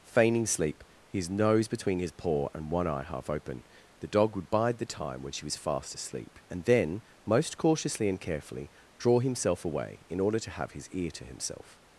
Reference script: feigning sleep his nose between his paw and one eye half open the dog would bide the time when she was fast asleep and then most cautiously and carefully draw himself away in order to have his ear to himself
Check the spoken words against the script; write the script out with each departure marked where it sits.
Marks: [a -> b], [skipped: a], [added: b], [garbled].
feigning sleep his nose between his paw and one eye half open the dog would bide the time when she was fast asleep and then most cautiously and carefully draw himself away in order to have his ear to himself